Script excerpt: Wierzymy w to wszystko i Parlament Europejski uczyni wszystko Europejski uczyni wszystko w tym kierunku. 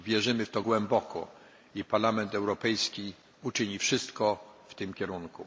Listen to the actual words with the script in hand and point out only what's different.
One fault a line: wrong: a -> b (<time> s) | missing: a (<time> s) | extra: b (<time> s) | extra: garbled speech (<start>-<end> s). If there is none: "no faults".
wrong: wszystko -> głęboko (0.6 s)
missing: Europejski uczyni wszystko (4.4 s)